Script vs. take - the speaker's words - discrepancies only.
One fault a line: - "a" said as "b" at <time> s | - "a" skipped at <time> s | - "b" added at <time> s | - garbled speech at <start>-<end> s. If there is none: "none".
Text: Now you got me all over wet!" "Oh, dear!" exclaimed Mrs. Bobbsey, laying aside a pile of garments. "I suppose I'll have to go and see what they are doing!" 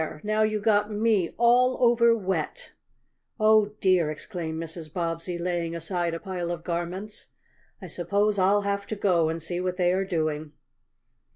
none